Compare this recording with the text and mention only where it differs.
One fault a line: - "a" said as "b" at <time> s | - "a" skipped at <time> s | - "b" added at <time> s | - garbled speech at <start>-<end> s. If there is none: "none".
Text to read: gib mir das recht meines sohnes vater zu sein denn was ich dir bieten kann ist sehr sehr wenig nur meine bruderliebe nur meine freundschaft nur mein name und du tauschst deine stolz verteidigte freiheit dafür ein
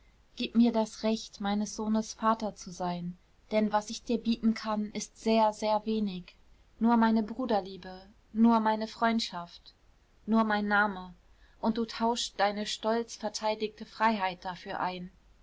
none